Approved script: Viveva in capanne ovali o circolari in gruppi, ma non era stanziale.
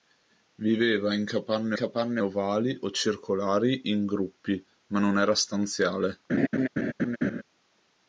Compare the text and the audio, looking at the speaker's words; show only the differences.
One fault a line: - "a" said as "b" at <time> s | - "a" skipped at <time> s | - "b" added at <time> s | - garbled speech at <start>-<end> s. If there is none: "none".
- "capanne" added at 1.7 s